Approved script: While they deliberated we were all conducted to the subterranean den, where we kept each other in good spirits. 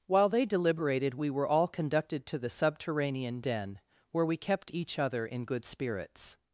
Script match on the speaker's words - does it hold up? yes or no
yes